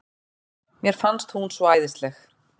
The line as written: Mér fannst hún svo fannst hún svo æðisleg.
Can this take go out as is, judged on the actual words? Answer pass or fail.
fail